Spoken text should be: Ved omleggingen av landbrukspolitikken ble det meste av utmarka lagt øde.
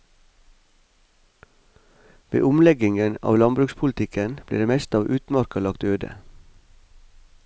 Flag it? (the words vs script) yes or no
no